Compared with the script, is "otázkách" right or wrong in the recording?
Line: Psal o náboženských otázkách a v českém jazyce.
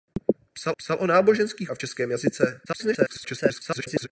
wrong